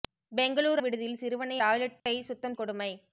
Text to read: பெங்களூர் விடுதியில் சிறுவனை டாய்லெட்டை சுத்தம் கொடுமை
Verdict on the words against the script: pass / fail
pass